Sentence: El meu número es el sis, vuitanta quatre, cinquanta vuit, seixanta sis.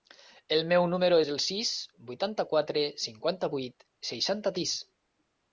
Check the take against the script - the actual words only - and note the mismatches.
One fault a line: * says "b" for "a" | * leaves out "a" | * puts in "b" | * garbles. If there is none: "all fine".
all fine